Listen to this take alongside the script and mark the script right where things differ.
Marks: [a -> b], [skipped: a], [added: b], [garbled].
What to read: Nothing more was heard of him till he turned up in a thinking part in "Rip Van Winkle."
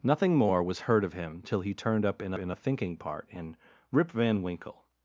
Nothing more was heard of him till he turned up in [added: in] a thinking part in "Rip Van Winkle."